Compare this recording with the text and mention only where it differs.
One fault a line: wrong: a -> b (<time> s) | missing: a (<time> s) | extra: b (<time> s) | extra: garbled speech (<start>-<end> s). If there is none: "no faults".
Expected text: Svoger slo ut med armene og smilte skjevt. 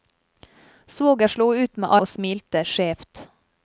missing: armene (1.9 s)